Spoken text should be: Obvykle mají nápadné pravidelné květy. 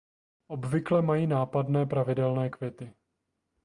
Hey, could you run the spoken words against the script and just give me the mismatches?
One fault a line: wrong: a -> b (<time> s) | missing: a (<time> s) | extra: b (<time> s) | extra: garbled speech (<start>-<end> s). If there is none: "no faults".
no faults